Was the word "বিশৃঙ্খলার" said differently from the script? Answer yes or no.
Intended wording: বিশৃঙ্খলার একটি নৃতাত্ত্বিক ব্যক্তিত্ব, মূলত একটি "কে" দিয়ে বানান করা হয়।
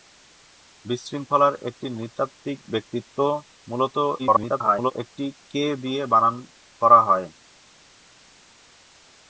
no